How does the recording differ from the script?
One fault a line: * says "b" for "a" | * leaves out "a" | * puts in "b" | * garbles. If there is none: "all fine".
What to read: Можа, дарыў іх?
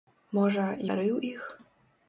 all fine